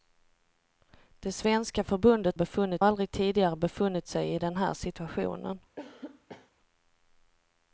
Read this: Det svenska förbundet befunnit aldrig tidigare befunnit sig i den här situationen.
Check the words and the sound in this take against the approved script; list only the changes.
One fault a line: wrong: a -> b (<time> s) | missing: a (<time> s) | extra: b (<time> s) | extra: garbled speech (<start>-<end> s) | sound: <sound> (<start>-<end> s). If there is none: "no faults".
sound: cough (5.8-6.5 s)